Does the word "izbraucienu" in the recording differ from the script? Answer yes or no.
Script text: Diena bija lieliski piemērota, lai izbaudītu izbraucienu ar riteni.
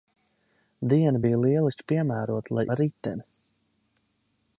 yes